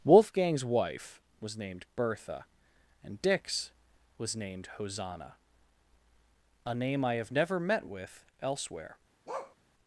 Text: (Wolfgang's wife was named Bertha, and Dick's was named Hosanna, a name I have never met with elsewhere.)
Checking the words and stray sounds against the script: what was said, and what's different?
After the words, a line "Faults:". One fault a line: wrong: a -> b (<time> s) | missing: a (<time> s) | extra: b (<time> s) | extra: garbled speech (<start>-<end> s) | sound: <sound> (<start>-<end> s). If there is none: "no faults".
(Wolfgang's wife was named Bertha, and Dick's was named Hosanna, a name I have never met with elsewhere.)
Faults:
sound: bark (9.3-9.6 s)